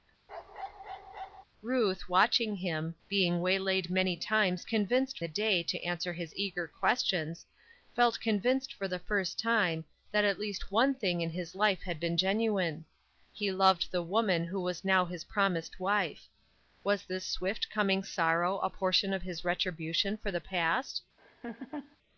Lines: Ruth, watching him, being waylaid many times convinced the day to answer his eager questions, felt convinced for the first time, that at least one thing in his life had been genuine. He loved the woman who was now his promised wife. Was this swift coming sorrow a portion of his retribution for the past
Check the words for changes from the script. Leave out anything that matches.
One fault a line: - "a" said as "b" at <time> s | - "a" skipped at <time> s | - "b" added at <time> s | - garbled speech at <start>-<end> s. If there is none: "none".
none